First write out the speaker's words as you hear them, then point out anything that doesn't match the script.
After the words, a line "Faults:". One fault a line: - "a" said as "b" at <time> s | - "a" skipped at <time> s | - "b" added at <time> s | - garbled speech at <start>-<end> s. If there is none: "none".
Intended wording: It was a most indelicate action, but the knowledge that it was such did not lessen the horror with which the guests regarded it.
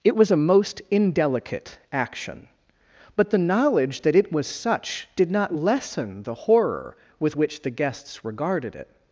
It was a most indelicate action, but the knowledge that it was such did not lessen the horror with which the guests regarded it.
Faults:
none